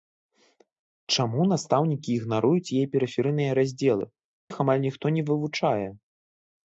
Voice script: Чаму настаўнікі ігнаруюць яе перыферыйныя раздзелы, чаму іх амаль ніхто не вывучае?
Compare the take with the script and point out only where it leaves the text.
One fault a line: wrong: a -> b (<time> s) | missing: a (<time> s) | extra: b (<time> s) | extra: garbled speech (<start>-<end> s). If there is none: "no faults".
missing: чаму (4.0 s)